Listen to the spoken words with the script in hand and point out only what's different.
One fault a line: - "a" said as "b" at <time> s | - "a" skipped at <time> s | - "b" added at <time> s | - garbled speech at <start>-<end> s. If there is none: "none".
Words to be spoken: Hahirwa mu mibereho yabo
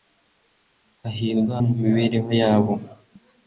none